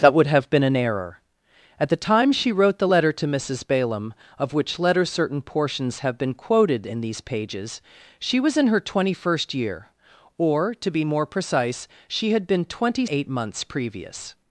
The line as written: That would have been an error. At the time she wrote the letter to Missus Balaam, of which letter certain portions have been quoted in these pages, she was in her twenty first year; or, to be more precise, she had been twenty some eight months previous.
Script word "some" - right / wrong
wrong